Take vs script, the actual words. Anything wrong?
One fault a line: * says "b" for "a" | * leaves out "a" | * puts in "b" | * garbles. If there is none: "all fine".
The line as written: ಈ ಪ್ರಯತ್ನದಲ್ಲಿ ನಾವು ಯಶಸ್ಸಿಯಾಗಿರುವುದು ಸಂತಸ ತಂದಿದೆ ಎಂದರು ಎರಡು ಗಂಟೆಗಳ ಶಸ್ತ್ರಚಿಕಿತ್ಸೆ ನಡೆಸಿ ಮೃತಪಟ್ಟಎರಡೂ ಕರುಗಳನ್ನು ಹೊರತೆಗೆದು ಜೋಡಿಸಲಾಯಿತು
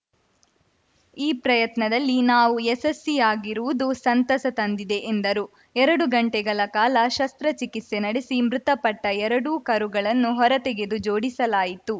* puts in "ಕಾಲ"